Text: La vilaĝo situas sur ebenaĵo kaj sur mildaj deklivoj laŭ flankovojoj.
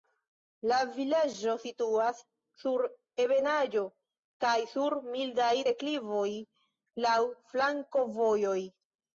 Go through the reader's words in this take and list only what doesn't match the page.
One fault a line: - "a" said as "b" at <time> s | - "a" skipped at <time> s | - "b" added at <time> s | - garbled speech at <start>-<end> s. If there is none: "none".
none